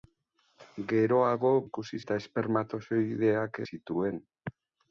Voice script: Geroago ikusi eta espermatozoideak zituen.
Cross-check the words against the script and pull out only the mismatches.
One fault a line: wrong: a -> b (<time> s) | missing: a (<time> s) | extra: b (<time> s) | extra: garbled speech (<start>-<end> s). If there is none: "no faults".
no faults